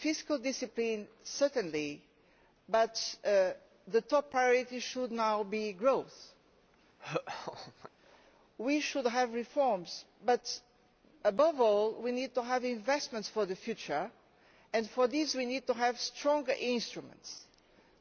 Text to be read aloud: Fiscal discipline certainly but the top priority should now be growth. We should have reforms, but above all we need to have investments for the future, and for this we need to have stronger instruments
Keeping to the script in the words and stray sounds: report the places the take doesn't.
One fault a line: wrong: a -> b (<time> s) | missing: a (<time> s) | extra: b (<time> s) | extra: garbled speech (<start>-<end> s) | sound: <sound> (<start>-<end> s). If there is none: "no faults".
sound: laugh (7.0-7.9 s)